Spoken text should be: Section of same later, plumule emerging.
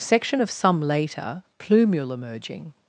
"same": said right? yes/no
no